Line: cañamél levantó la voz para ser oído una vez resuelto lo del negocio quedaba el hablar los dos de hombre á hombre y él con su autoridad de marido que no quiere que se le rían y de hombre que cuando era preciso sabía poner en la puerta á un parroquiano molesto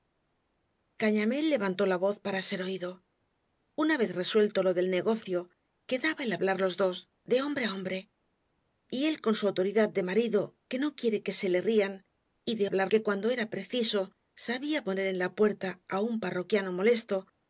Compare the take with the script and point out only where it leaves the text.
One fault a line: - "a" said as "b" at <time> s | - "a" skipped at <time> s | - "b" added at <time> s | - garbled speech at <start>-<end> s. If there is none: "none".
- "hombre" said as "hablar" at 12.6 s